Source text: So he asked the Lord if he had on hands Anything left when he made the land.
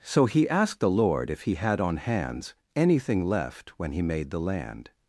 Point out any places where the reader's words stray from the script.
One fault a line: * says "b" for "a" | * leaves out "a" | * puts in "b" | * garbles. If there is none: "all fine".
all fine